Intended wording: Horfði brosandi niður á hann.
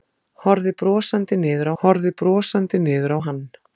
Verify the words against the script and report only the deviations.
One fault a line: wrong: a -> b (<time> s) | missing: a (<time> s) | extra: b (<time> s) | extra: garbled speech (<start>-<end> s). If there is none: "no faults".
extra: horfði brosandi niður (1.8 s)